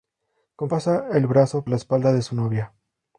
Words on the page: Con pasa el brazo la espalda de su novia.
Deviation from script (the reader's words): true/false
false